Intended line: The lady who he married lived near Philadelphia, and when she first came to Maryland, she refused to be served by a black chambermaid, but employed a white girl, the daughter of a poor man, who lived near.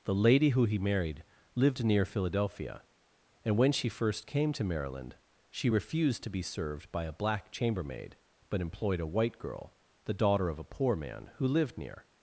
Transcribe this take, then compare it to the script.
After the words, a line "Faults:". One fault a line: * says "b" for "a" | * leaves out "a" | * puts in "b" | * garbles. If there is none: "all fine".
The lady who he married lived near Philadelphia, and when she first came to Maryland, she refused to be served by a black chambermaid, but employed a white girl, the daughter of a poor man, who lived near.
Faults:
all fine